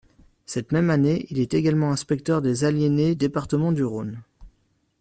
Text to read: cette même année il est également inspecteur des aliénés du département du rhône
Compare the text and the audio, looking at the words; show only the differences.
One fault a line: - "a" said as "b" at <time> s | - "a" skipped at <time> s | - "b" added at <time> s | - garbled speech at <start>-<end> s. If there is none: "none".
- "du" skipped at 3.1 s